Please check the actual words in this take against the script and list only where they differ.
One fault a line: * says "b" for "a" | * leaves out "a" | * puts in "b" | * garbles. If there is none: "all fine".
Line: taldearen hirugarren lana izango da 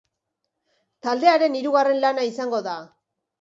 all fine